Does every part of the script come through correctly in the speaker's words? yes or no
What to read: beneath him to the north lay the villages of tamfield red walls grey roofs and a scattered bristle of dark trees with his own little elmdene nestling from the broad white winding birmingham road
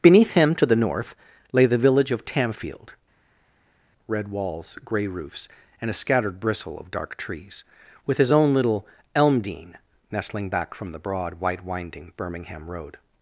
no